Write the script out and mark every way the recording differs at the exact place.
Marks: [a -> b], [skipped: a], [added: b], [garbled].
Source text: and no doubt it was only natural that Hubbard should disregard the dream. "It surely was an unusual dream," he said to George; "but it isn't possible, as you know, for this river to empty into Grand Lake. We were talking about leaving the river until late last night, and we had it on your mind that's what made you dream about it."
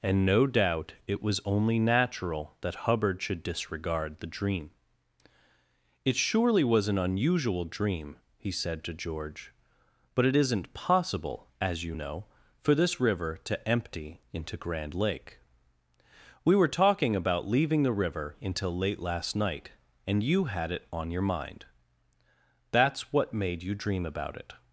and no doubt it was only natural that Hubbard should disregard the dream. "It surely was an unusual dream," he said to George; "but it isn't possible, as you know, for this river to empty into Grand Lake. We were talking about leaving the river until late last night, and [we -> you] had it on your mind that's what made you dream about it."